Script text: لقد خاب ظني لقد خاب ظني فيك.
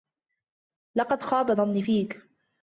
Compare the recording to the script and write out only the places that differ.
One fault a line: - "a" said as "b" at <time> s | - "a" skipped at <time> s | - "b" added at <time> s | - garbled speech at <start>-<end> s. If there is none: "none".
- "لقد خاب ظني" skipped at 1.8 s